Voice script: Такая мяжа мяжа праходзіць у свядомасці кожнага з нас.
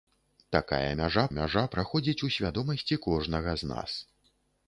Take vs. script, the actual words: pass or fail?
pass